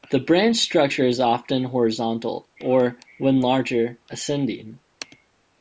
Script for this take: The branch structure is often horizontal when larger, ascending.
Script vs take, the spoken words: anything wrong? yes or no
yes